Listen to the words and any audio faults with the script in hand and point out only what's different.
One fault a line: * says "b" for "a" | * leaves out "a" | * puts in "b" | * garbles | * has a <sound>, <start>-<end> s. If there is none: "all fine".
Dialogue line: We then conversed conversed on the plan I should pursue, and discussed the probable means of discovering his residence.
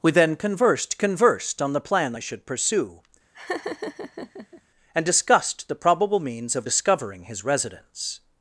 * has a laugh, 3.3-4.6 s